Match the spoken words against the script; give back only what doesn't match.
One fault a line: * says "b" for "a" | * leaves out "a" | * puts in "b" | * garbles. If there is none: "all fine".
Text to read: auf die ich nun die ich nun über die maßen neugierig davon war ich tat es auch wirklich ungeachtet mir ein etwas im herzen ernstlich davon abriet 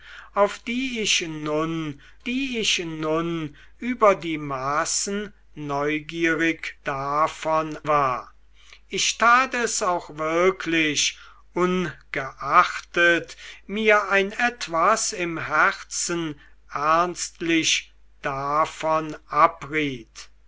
all fine